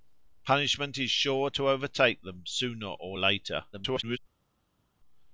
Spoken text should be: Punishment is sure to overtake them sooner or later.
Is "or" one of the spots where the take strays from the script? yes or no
no